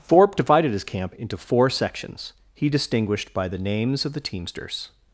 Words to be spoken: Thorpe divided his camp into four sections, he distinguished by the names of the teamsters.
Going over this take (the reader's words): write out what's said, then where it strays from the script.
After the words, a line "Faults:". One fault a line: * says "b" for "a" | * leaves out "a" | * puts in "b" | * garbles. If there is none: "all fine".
Thorpe divided his camp into four sections, he distinguished by the names of the teamsters.
Faults:
all fine